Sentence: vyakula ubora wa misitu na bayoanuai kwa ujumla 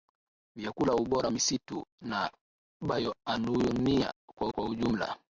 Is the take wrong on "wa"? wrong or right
wrong